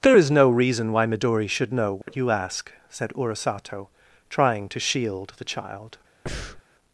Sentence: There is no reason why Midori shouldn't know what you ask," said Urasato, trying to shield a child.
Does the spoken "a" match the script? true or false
false